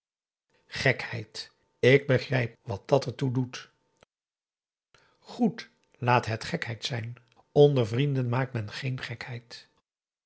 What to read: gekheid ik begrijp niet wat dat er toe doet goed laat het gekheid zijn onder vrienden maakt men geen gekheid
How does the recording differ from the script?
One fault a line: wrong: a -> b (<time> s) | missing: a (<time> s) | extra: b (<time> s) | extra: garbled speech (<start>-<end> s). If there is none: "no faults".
missing: niet (2.6 s)